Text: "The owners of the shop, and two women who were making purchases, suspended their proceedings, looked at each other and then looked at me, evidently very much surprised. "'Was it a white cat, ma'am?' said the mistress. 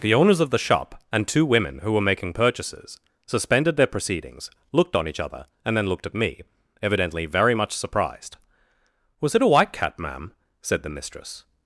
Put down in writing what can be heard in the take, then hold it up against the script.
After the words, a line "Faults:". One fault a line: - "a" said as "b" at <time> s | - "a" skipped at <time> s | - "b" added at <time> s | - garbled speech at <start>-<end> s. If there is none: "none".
"The owners of the shop, and two women who were making purchases, suspended their proceedings, looked on each other and then looked at me, evidently very much surprised. "'Was it a white cat, ma'am?' said the mistress.
Faults:
- "at" said as "on" at 5.0 s